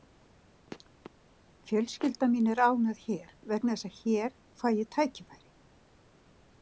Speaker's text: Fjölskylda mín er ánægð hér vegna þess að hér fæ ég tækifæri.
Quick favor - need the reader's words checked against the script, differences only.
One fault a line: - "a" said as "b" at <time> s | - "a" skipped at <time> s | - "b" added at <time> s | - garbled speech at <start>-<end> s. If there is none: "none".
none